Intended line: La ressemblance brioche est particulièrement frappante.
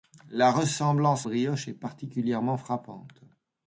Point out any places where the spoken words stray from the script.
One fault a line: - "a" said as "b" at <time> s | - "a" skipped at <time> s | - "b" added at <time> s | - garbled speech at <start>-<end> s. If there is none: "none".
none